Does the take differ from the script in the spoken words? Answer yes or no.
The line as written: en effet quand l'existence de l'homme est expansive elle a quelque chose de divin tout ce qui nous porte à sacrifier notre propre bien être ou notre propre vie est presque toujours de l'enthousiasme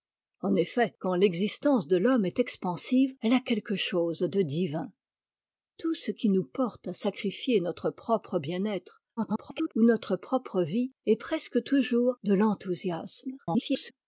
yes